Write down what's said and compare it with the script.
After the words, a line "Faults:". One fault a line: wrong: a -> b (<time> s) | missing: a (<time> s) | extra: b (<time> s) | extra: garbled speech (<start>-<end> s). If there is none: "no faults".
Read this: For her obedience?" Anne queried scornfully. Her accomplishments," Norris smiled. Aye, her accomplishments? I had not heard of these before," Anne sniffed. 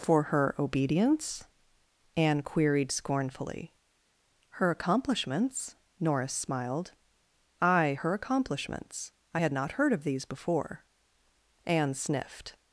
For her obedience?" Anne queried scornfully. Her accomplishments," Norris smiled. Aye, her accomplishments? I had not heard of these before," Anne sniffed.
Faults:
no faults